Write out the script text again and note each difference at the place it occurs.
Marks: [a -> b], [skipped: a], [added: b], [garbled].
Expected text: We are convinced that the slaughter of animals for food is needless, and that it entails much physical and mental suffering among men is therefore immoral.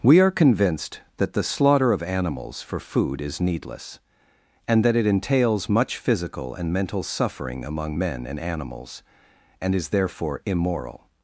We are convinced that the slaughter of animals for food is needless, and that it entails much physical and mental suffering among men [added: and animals and] is therefore immoral.